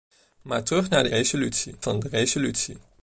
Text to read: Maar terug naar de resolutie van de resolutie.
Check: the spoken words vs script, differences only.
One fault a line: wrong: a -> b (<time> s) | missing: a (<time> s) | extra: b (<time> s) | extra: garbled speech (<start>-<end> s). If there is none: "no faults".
no faults